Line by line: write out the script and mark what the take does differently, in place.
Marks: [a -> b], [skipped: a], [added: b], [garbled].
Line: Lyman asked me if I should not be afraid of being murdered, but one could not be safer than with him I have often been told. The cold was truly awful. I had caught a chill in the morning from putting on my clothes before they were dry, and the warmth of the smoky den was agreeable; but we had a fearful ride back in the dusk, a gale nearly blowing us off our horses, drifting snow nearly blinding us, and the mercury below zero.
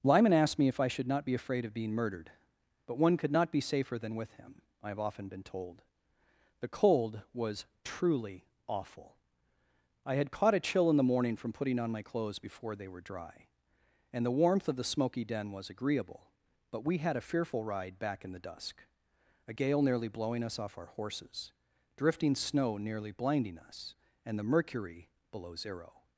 Lyman asked me if I should not be afraid of being murdered, but one could not be safer than with him I have often been told. The cold was truly awful. I had caught a chill in the morning from putting on my clothes before they were dry, and the warmth of the smoky den was agreeable; but we had a fearful ride back in the dusk, a gale nearly blowing us off our horses, drifting snow nearly blinding us, and the mercury below zero.